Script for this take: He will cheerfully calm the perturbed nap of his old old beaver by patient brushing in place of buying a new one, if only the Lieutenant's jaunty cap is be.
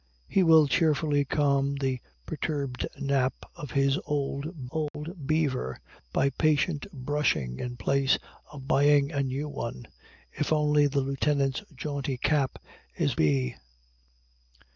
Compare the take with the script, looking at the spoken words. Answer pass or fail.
pass